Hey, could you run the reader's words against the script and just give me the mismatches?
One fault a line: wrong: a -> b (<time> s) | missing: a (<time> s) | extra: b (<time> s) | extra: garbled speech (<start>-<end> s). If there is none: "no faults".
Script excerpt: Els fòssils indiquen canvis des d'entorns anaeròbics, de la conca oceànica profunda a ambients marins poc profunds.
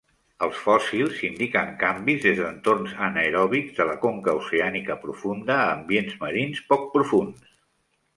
no faults